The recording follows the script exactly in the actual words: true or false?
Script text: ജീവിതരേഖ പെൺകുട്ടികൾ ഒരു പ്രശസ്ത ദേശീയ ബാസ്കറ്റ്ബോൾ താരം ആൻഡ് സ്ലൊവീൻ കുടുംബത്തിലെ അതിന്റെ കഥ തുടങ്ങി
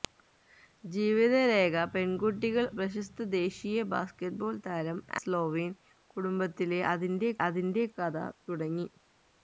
false